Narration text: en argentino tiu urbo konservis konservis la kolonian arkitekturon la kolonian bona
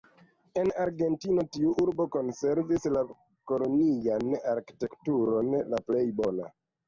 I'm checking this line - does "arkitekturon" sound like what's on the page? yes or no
yes